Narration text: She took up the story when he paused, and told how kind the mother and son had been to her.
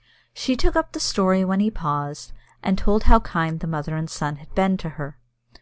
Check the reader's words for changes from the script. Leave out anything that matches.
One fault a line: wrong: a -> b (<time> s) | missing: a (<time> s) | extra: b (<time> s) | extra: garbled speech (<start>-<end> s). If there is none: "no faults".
no faults